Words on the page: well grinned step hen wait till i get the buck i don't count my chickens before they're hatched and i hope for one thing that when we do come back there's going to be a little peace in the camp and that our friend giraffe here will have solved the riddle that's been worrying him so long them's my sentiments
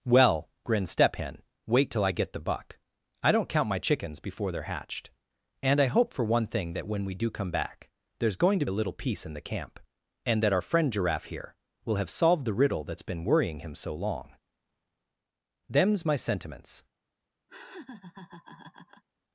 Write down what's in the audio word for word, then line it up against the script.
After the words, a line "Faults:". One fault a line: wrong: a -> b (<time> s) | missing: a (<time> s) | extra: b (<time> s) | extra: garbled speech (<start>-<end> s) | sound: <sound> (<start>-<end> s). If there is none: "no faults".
well grinned step hen wait till i get the buck i don't count my chickens before they're hatched and i hope for one thing that when we do come back there's going to a little peace in the camp and that our friend giraffe here will have solved the riddle that's been worrying him so long them's my sentiments
Faults:
missing: be (8.7 s)
sound: laugh (17.5-19.0 s)